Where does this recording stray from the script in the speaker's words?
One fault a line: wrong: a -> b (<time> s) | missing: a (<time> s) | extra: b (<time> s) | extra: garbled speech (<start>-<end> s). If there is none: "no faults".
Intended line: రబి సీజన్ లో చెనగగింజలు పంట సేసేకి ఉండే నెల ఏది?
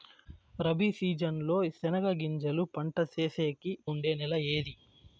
no faults